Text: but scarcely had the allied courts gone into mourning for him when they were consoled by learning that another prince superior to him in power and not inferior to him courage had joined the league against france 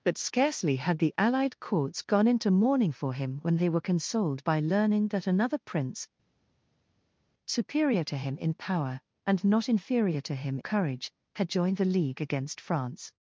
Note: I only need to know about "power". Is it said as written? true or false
true